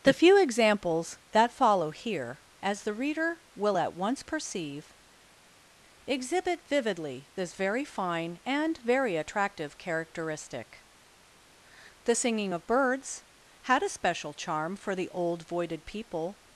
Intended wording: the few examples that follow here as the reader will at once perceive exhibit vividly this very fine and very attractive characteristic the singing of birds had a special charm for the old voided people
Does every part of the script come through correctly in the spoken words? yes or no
yes